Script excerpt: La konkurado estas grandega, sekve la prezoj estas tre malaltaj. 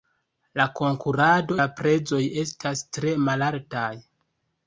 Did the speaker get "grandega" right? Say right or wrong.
wrong